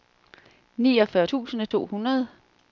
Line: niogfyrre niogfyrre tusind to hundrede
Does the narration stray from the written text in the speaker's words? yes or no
yes